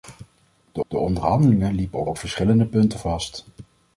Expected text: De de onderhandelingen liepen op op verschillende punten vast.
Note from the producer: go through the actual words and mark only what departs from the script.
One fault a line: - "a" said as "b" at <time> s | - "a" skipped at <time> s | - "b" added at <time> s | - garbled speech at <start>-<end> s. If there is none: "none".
none